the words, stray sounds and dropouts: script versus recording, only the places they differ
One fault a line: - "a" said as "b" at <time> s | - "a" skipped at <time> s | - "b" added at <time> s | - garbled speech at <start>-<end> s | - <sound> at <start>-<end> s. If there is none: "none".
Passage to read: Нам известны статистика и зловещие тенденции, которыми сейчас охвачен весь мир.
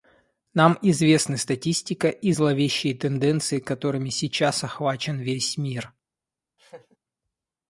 - laugh at 6.6-7.0 s